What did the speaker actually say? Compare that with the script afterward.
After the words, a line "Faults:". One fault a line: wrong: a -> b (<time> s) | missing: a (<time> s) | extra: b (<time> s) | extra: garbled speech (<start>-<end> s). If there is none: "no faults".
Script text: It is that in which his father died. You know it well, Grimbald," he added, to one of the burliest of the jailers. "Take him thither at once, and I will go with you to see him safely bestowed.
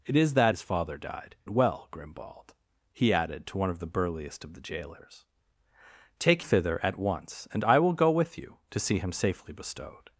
It is that his father died. It well, Grimbald," he added, to one of the burliest of the jailers. "Take thither at once, and I will go with you to see him safely bestowed.
Faults:
missing: in which (0.6 s)
missing: You know (1.3 s)
missing: him (6.5 s)